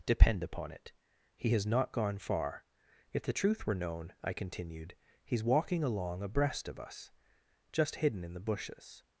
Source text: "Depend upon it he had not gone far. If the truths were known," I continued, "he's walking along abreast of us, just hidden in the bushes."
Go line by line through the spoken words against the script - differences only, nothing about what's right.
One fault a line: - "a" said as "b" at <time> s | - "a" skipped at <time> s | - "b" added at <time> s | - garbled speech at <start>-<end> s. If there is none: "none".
- "had" said as "has" at 1.5 s
- "truths" said as "truth" at 3.3 s